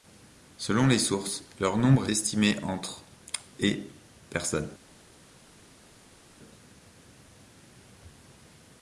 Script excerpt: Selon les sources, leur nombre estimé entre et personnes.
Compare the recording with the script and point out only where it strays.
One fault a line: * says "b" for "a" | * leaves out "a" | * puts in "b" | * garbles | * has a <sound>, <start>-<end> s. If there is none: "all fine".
all fine